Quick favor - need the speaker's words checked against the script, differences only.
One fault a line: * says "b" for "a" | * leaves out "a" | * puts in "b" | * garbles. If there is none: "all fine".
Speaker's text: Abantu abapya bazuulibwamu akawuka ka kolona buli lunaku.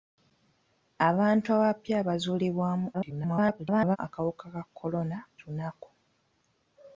* garbles
* leaves out "buli"